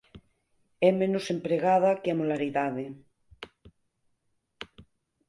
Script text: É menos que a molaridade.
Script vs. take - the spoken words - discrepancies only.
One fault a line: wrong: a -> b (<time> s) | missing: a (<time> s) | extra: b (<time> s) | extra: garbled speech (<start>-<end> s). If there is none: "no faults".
extra: empregada (1.3 s)